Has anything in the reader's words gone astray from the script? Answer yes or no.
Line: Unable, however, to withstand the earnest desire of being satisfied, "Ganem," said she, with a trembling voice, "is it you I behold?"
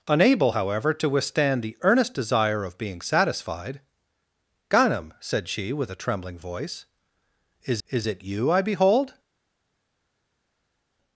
yes